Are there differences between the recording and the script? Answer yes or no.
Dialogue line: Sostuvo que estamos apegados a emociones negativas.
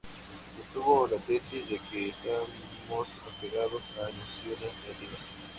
yes